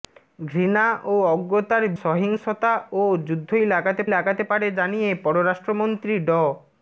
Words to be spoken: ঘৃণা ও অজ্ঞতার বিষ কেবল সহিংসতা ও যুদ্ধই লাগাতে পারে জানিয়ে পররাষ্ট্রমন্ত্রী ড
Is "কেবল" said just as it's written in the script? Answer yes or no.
no